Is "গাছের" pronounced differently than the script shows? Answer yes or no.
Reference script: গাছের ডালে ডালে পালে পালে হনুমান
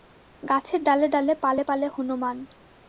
no